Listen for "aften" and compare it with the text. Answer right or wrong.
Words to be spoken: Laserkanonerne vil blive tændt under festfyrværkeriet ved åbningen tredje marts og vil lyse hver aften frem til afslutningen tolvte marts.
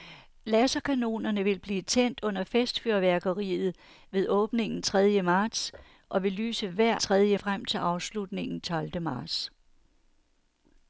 wrong